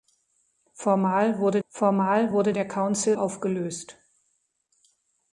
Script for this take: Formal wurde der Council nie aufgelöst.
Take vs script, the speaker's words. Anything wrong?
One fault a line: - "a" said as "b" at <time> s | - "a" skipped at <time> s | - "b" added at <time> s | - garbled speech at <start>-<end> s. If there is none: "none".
- "formal wurde" added at 1.7 s
- "nie" skipped at 3.2 s